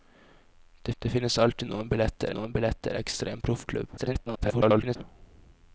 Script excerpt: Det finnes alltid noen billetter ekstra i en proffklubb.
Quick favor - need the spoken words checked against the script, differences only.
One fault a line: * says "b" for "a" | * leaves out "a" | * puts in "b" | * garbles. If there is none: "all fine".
* puts in "det"
* puts in "noen billetter"
* garbles